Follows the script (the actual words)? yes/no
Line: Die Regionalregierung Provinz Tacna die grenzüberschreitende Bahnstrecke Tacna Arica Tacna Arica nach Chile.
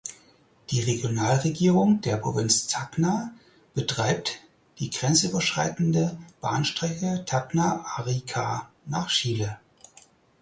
no